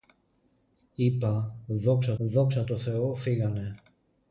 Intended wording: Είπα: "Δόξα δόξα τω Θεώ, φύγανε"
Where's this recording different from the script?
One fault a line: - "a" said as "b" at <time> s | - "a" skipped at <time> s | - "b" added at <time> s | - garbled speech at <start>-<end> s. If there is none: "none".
none